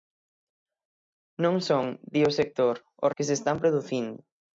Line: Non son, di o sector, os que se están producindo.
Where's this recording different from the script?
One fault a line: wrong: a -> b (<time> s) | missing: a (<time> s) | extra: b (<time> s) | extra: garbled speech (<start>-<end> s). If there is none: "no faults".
no faults